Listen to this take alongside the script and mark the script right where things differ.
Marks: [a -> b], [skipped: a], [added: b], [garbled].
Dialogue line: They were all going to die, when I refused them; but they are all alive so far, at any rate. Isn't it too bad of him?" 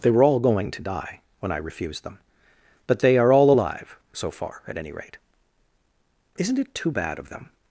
They were all going to die, when I refused them; but they are all alive so far, at any rate. Isn't it too bad of [him?" -> them]